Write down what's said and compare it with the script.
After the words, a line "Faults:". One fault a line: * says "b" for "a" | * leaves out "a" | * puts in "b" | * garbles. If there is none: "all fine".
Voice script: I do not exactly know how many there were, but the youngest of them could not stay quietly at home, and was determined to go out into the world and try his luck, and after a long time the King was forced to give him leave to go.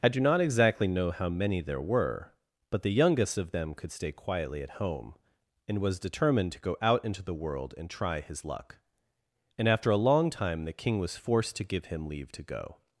I do not exactly know how many there were, but the youngest of them could stay quietly at home, and was determined to go out into the world and try his luck, and after a long time the King was forced to give him leave to go.
Faults:
* leaves out "not"